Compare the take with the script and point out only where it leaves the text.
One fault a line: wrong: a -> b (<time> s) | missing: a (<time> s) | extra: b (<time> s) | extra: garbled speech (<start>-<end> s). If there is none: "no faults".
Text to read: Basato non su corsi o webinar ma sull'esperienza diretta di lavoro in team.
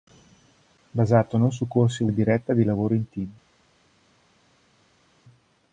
missing: webinar ma sull'esperienza (2.1 s)